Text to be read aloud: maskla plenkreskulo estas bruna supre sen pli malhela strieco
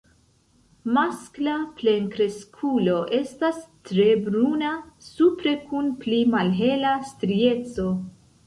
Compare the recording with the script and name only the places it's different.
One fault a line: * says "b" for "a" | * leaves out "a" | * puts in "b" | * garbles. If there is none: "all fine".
* puts in "tre"
* says "kun" for "sen"